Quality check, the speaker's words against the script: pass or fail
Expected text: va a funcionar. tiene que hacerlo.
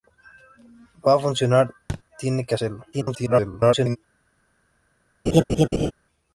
fail